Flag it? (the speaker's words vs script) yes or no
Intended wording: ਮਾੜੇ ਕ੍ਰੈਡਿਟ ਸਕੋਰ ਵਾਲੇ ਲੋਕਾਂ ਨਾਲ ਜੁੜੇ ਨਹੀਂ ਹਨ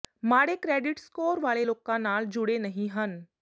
no